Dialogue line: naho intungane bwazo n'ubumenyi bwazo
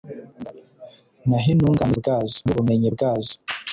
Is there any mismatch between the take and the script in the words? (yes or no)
no